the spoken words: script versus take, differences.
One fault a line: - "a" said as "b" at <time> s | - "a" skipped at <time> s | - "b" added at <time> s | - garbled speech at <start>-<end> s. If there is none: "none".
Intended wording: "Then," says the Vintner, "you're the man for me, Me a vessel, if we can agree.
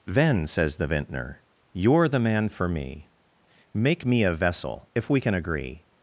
- "Make" added at 3.7 s